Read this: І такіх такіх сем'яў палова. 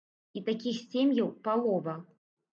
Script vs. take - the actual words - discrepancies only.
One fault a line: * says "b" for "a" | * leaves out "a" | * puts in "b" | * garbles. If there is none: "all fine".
* leaves out "такіх"